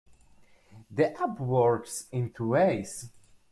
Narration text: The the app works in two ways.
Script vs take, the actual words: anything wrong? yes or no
yes